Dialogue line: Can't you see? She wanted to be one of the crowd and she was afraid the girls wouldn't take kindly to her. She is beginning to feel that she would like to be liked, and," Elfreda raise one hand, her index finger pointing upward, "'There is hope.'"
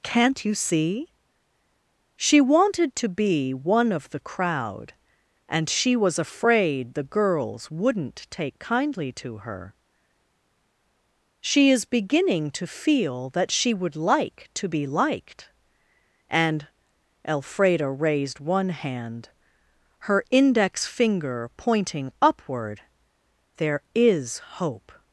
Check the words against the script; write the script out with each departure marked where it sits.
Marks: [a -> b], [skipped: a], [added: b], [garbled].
Can't you see? She wanted to be one of the crowd and she was afraid the girls wouldn't take kindly to her. She is beginning to feel that she would like to be liked, and," Elfreda [raise -> raised] one hand, her index finger pointing upward, "'There is hope.'"